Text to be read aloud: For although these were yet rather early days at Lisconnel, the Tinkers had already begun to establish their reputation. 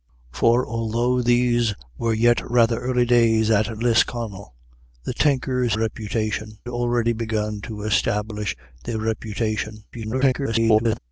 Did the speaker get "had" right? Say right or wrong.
wrong